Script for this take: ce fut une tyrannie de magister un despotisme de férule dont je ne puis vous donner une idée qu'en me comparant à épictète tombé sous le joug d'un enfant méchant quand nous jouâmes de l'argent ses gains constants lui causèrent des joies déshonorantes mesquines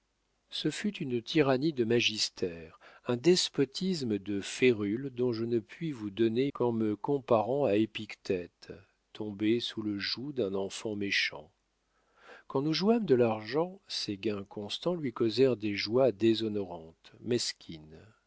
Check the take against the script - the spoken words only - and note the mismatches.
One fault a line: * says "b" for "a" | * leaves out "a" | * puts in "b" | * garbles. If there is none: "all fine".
* leaves out "une idée"